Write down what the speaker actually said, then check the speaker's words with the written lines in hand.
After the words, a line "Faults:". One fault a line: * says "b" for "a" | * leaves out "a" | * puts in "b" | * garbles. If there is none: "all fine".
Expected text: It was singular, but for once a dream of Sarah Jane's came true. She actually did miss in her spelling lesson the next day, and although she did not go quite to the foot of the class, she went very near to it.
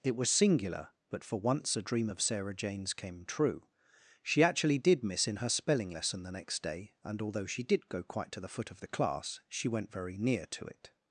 It was singular, but for once a dream of Sarah Jane's came true. She actually did miss in her spelling lesson the next day, and although she did go quite to the foot of the class, she went very near to it.
Faults:
* leaves out "not"